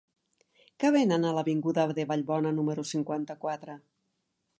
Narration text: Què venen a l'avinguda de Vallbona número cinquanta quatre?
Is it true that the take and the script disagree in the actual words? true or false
false